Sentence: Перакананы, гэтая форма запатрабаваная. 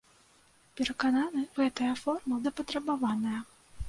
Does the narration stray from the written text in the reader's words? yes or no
no